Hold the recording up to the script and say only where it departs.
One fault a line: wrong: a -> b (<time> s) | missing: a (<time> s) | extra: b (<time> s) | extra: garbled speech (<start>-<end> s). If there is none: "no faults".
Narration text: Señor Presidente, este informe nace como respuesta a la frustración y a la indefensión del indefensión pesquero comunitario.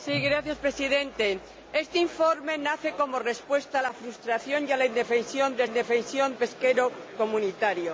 no faults